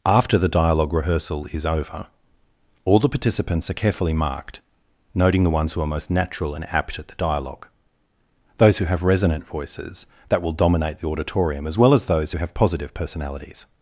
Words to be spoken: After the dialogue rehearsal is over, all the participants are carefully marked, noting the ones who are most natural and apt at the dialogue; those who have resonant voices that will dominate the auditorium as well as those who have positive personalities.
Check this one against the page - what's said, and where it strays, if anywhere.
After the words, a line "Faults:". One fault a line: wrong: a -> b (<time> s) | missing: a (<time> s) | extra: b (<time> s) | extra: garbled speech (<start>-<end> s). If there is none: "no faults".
After the dialogue rehearsal is over, all the participants are carefully marked, noting the ones who are most natural and apt at the dialogue; those who have resonant voices that will dominate the auditorium as well as those who have positive personalities.
Faults:
no faults